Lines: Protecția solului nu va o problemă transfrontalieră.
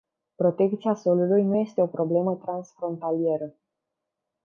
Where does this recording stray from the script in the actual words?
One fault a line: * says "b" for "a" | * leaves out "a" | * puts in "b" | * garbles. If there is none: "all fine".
* says "este" for "va"